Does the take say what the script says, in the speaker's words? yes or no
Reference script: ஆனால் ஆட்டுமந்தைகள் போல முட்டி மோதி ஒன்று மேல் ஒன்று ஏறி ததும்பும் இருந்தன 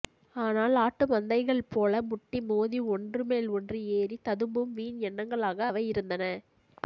no